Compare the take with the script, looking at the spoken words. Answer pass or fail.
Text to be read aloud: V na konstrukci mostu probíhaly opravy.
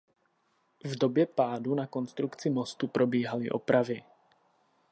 fail